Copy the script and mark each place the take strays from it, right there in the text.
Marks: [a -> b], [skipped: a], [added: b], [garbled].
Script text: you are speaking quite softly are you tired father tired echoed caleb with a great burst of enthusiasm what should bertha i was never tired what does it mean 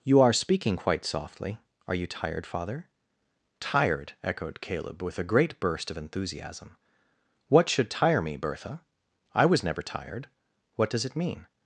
you are speaking quite softly are you tired father tired echoed caleb with a great burst of enthusiasm what should [added: tire me] bertha i was never tired what does it mean